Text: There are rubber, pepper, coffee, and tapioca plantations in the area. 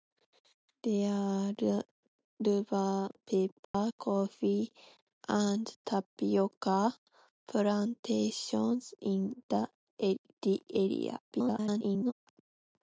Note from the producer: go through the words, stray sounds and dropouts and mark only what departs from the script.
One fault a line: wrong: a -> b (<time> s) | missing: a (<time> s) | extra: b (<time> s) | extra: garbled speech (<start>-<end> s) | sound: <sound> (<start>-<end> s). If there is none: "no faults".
sound: dropout (3.6-3.7 s)
extra: garbled speech (11.3-12.1 s)